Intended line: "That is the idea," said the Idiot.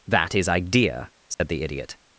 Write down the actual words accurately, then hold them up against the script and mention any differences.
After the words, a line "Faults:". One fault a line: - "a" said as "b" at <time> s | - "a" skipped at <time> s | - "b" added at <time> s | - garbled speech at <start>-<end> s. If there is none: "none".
"That is idea," said the Idiot.
Faults:
- "the" skipped at 0.5 s